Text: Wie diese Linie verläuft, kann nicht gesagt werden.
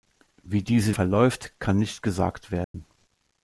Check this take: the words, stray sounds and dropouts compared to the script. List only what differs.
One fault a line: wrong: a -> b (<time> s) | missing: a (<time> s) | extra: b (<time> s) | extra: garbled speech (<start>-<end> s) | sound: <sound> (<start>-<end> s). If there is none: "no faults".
missing: Linie (0.9 s)
sound: dropout (2.6-2.7 s)